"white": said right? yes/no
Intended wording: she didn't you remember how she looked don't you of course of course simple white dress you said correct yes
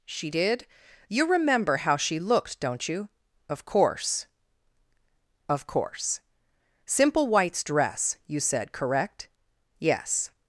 no